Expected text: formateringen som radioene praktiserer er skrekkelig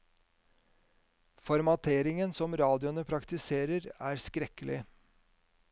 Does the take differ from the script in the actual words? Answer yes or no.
no